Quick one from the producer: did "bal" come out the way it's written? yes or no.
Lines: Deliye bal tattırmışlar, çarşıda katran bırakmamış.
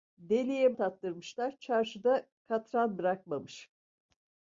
no